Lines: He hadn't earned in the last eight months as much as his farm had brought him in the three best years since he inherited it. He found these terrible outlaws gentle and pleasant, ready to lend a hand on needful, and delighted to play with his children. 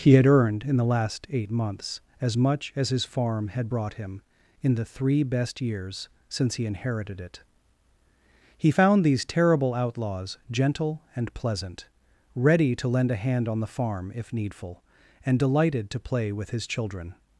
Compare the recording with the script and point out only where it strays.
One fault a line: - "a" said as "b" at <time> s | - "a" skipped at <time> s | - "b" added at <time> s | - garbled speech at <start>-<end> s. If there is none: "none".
- "hadn't" said as "had" at 0.1 s
- "the farm if" added at 13.6 s